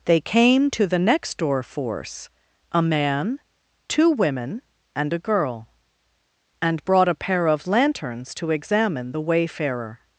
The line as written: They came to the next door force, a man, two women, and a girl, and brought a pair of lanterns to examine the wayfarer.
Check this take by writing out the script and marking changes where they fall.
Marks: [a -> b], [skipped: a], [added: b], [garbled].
They came to the next door force, a man, two women, and a girl, and brought a pair of lanterns to examine the wayfarer.